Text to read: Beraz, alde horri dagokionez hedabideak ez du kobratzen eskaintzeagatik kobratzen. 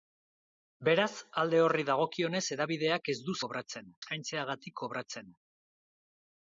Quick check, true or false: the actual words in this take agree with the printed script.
true